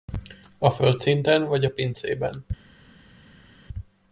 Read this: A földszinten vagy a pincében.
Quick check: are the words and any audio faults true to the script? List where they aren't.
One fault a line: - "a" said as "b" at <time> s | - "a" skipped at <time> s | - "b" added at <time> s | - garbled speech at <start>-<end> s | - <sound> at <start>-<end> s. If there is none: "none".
none